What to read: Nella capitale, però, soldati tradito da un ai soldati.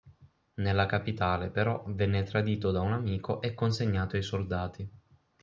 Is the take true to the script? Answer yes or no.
no